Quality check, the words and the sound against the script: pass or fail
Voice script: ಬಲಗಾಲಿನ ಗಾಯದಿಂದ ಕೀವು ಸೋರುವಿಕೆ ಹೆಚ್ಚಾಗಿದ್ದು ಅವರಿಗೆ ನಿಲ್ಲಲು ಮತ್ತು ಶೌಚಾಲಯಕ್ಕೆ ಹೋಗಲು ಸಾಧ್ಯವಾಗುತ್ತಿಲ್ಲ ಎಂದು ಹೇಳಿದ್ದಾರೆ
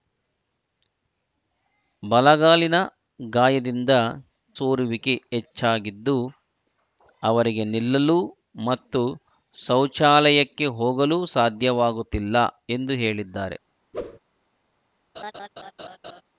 fail